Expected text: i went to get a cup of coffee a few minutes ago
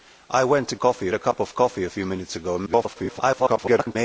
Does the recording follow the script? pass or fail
fail